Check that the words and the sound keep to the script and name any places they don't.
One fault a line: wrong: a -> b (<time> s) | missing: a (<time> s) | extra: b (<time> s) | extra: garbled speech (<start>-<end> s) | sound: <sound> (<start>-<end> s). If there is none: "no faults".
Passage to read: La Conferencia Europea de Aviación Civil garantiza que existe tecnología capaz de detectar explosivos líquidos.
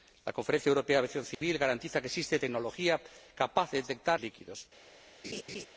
sound: dropout (1.3-1.4 s)
missing: explosivos (4.2 s)
sound: laugh (5.2-5.7 s)